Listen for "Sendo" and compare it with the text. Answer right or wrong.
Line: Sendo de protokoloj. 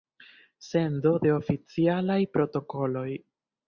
right